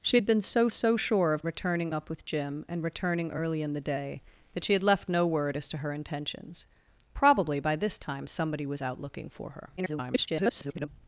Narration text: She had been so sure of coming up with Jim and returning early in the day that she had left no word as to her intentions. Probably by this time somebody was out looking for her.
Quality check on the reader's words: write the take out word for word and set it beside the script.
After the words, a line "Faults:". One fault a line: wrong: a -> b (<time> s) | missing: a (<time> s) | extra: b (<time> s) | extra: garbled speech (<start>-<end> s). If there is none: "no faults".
She had been so so sure of returning up with Jim and returning early in the day that she had left no word as to her intentions. Probably by this time somebody was out looking for her. [garbled]
Faults:
extra: so (0.7 s)
wrong: coming -> returning (1.5 s)
extra: garbled speech (9.8-10.9 s)